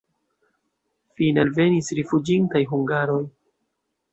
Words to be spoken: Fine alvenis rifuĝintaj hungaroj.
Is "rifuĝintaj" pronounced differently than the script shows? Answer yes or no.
no